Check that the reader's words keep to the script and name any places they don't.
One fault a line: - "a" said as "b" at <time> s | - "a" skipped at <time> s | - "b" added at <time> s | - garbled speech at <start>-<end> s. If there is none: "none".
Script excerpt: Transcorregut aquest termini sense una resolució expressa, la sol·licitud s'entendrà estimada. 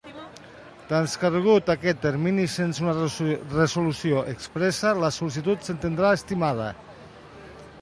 none